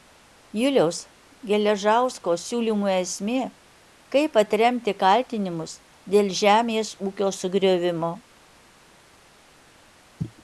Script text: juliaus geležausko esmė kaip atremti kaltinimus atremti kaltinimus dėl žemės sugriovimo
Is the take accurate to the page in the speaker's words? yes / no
no